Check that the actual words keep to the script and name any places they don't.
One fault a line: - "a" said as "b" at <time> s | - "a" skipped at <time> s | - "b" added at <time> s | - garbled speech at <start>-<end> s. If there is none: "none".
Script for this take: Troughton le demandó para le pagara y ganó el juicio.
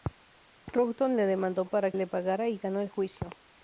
none